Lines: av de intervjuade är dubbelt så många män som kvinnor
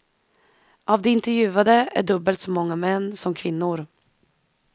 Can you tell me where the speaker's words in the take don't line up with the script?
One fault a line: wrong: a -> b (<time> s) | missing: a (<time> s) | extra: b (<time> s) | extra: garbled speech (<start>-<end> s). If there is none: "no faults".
no faults